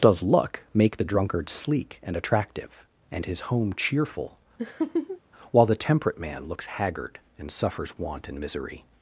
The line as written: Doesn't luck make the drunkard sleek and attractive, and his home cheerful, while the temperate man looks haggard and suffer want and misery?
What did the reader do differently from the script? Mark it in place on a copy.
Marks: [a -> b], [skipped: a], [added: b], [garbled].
[Doesn't -> Does] luck make the drunkard sleek and attractive, and his home cheerful, while the temperate man looks haggard and [suffer -> suffers] want and misery?